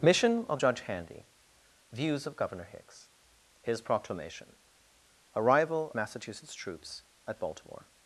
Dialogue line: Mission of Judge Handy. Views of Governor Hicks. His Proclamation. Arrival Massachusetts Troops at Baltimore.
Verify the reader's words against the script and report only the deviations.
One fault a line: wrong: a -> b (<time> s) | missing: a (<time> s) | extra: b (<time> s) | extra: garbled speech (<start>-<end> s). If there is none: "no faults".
no faults